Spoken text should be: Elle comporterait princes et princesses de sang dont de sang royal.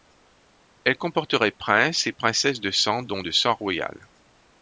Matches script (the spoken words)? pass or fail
pass